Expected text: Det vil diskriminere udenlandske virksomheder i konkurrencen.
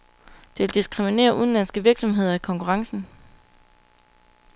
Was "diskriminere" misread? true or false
false